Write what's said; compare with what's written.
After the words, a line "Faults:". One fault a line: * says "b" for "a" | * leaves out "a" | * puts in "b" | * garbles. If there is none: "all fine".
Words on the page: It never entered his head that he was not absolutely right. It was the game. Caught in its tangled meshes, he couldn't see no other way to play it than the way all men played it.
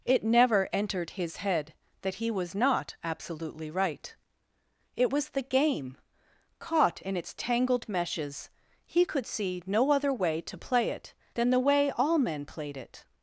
It never entered his head that he was not absolutely right. It was the game. Caught in its tangled meshes, he could see no other way to play it than the way all men played it.
Faults:
* says "could" for "couldn't"